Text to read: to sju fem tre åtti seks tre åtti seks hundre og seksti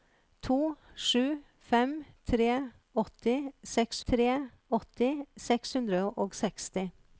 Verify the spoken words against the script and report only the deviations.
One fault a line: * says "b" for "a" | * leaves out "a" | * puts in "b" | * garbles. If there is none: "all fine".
all fine